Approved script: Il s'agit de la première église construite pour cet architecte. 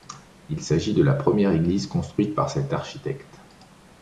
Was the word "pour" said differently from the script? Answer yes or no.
yes